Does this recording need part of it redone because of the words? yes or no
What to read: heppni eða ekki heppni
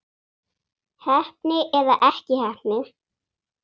no